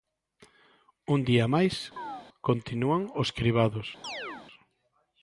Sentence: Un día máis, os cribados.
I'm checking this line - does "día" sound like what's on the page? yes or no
yes